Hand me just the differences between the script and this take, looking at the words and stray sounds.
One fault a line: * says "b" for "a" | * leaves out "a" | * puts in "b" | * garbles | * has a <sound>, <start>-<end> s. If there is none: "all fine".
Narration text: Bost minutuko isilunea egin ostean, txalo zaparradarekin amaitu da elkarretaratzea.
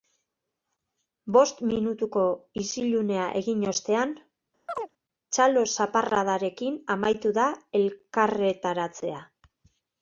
* has a chirp, 4.7-4.9 s